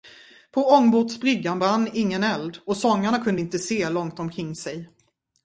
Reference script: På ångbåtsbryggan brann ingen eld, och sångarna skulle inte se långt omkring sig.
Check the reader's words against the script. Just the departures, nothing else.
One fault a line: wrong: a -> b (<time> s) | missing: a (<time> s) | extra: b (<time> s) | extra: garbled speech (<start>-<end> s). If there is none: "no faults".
wrong: skulle -> kunde (3.2 s)